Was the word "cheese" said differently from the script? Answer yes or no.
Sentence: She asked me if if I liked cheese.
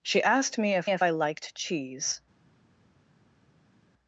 no